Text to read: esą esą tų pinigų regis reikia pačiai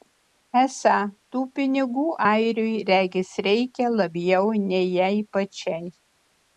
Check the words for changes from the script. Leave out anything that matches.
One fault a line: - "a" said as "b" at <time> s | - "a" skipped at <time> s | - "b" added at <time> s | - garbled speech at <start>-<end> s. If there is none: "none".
- "esą" skipped at 0.9 s
- "airiui" added at 2.3 s
- "labiau nei jai" added at 4.0 s